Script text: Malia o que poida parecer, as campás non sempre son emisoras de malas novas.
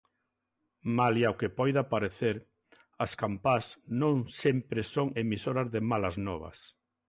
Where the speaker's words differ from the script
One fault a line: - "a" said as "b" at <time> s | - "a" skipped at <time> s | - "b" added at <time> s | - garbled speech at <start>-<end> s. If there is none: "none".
none